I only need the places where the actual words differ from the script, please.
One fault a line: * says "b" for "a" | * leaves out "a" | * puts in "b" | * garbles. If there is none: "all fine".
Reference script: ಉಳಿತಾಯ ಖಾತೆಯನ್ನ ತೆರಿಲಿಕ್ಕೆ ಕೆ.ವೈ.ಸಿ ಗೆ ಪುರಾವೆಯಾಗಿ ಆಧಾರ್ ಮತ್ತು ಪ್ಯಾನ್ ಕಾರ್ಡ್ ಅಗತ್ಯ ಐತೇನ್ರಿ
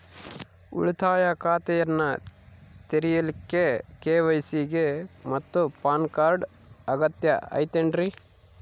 * leaves out "ಪುರಾವೆಯಾಗಿ ಆಧಾರ್"